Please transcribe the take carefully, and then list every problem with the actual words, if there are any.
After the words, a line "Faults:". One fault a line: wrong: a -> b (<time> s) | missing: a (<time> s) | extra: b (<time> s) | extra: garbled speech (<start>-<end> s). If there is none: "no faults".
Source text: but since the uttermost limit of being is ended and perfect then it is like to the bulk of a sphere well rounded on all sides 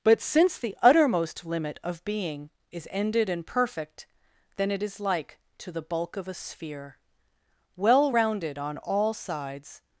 but since the uttermost limit of being is ended and perfect then it is like to the bulk of a sphere well rounded on all sides
Faults:
no faults